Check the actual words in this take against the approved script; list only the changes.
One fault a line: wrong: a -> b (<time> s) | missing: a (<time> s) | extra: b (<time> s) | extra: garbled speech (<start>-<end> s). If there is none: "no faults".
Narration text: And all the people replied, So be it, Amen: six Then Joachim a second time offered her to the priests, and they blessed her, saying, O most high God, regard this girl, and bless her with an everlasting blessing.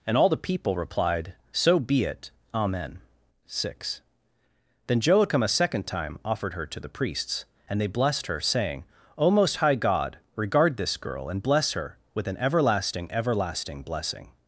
extra: everlasting (13.1 s)